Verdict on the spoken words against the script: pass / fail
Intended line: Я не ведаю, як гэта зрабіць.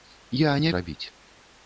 fail